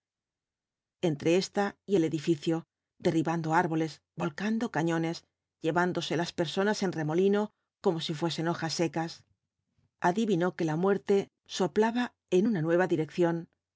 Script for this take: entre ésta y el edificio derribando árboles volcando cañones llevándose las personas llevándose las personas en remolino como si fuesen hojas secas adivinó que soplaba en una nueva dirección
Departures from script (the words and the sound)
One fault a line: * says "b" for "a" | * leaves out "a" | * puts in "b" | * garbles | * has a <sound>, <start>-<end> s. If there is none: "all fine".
* leaves out "llevándose las personas"
* puts in "la muerte"